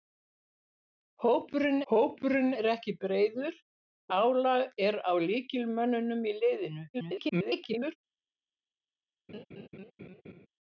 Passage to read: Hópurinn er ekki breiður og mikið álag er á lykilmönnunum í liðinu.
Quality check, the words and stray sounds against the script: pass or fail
fail